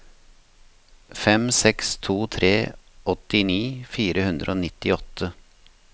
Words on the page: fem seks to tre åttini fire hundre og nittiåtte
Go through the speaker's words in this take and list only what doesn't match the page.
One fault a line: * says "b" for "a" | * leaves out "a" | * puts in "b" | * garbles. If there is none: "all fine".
all fine